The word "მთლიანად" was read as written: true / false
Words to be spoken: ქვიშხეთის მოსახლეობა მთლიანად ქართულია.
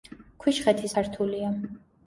false